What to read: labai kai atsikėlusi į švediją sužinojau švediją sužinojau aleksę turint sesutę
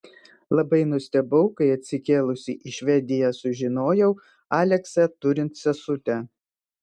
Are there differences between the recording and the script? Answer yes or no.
yes